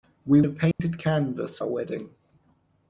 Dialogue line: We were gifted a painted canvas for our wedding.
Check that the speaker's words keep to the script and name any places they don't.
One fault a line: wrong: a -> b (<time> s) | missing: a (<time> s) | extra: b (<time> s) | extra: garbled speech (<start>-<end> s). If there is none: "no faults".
missing: were gifted (0.4 s)
missing: for (1.6 s)